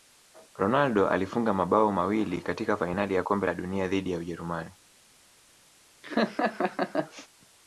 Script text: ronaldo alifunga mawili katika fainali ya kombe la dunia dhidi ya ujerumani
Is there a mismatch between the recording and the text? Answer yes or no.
yes